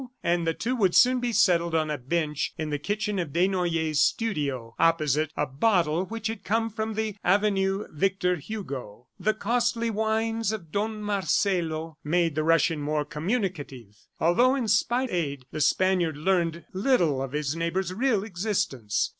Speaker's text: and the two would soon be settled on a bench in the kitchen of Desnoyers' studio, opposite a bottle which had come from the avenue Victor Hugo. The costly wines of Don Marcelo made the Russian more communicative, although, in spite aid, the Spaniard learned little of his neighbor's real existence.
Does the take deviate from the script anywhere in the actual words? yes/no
no